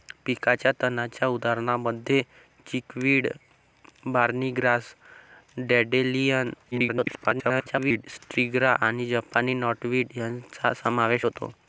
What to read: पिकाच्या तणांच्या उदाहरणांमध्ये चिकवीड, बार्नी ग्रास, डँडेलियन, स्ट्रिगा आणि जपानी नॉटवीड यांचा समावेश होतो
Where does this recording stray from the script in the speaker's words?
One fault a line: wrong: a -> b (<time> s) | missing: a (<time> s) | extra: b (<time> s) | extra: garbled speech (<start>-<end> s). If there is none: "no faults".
extra: garbled speech (6.7-8.1 s)